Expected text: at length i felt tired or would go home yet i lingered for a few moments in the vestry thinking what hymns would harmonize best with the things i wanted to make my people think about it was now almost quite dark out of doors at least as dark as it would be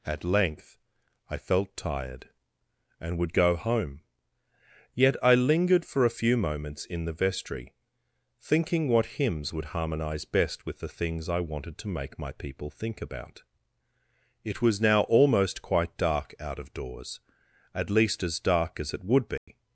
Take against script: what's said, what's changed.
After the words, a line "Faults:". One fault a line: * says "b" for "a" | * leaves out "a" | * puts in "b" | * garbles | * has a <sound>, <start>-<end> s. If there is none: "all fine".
at length i felt tired and would go home yet i lingered for a few moments in the vestry thinking what hymns would harmonize best with the things i wanted to make my people think about it was now almost quite dark out of doors at least as dark as it would be
Faults:
* says "and" for "or"
* has a dropout, 19.4-19.5 s